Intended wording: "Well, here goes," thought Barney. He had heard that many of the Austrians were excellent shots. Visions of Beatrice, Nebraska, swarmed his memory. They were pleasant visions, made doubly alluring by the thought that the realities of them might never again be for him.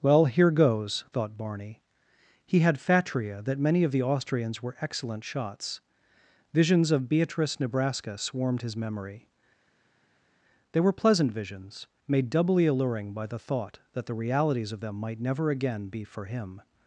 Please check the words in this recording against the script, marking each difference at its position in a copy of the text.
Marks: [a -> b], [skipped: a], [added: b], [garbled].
"Well, here goes," thought Barney. He had [heard -> fatria] that many of the Austrians were excellent shots. Visions of Beatrice, Nebraska, swarmed his memory. They were pleasant visions, made doubly alluring by the thought that the realities of them might never again be for him.